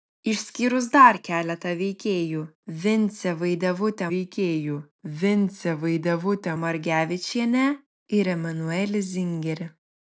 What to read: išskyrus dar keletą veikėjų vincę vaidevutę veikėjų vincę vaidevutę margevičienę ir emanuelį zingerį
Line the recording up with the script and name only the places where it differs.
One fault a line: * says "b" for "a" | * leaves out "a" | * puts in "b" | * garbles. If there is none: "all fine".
all fine